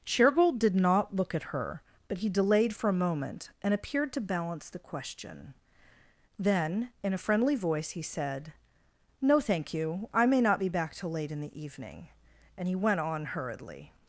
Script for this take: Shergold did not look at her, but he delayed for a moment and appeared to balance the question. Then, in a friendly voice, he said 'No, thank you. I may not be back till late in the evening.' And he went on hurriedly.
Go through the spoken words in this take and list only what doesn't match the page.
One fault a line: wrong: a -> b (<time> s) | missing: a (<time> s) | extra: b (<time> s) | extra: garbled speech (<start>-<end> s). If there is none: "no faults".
no faults